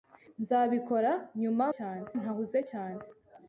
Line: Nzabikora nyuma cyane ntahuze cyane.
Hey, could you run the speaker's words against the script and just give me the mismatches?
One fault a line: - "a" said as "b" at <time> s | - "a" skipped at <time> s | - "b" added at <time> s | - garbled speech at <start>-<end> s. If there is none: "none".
none